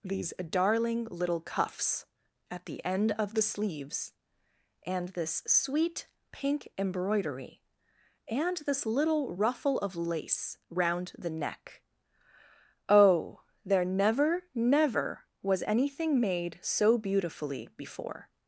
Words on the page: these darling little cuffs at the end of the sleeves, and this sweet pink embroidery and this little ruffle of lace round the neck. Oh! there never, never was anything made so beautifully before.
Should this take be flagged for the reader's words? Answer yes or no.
no